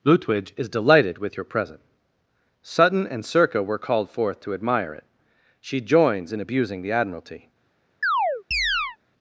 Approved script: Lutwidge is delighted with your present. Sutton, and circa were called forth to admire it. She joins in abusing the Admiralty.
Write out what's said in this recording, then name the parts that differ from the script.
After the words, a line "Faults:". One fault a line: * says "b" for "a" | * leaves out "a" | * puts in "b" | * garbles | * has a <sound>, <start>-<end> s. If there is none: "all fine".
Lutwidge is delighted with your present. Sutton, and circa were called forth to admire it. She joins in abusing the Admiralty.
Faults:
* has a chirp, 8.0-9.0 s